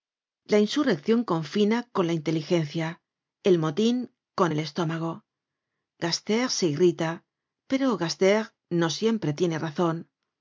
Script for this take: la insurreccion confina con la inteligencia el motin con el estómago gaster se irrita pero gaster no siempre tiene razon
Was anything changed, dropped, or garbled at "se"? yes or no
no